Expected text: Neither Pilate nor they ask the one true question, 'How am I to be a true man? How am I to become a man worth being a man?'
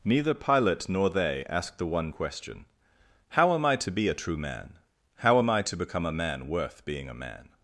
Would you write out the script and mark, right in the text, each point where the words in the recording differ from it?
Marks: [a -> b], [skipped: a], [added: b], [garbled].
Neither Pilate nor they ask the one [skipped: true] question, 'How am I to be a true man? How am I to become a man worth being a man?'